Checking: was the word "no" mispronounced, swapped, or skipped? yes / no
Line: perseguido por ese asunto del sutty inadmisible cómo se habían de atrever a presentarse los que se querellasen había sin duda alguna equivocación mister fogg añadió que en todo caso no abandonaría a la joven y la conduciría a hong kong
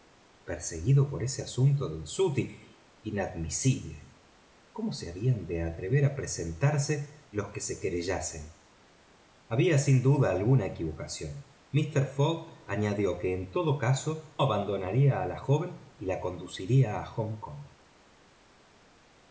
yes